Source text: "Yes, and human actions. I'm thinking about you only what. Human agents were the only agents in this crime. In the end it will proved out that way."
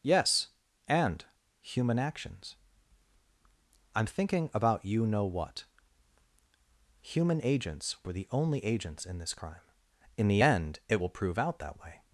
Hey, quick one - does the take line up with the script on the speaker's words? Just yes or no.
no